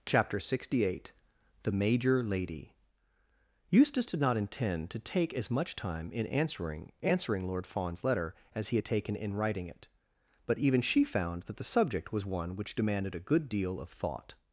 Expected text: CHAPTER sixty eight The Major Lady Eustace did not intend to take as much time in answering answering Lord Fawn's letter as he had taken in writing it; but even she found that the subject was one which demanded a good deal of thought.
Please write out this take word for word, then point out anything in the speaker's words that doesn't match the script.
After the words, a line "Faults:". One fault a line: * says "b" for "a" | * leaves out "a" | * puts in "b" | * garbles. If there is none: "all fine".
CHAPTER sixty eight The Major Lady Eustace did not intend to take as much time in answering answering Lord Fawn's letter as he had taken in writing it; but even she found that the subject was one which demanded a good deal of thought.
Faults:
all fine